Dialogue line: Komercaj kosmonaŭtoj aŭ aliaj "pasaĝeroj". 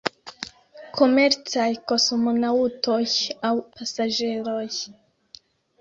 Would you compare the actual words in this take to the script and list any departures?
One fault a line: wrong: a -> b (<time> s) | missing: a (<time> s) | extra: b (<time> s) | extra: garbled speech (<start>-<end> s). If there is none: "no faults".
missing: aliaj (3.5 s)